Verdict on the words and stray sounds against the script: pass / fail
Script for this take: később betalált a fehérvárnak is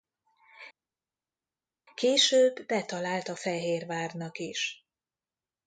pass